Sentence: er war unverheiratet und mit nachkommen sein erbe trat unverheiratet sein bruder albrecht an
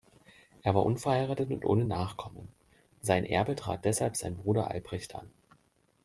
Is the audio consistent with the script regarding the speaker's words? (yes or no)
no